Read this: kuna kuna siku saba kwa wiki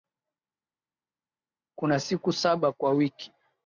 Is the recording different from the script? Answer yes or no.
yes